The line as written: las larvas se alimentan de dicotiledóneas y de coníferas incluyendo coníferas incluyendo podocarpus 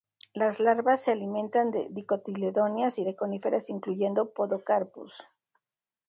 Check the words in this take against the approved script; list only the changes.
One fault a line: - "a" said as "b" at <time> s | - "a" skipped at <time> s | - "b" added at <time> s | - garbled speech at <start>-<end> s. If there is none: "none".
- "coníferas incluyendo" skipped at 4.3 s